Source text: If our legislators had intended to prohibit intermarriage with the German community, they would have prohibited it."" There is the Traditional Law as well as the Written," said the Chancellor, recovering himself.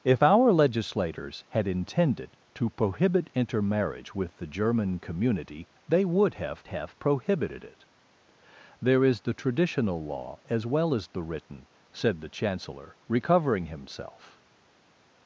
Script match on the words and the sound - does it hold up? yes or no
no